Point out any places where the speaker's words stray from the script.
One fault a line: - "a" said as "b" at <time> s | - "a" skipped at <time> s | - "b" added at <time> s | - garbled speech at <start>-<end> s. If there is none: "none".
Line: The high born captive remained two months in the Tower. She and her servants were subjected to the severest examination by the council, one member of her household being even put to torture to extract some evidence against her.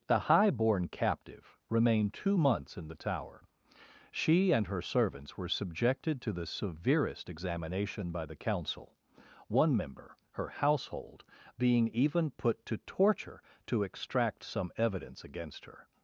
- "of" skipped at 10.2 s